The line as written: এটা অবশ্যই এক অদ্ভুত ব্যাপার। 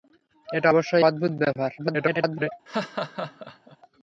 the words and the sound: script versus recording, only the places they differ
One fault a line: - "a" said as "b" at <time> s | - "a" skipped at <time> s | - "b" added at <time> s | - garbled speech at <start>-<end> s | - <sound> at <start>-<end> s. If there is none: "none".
- "এক" skipped at 1.1 s
- garbled speech at 1.8-2.5 s
- laugh at 2.7-3.8 s